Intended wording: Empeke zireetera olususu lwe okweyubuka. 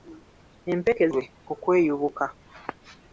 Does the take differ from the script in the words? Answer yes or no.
yes